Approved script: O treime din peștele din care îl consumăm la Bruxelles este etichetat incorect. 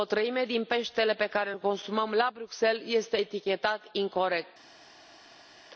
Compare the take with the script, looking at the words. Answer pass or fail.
fail